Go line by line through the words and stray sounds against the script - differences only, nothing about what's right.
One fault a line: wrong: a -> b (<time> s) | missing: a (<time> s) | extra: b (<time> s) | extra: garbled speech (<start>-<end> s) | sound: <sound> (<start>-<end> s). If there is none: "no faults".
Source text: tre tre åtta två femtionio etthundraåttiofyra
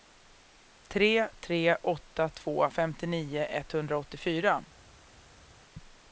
no faults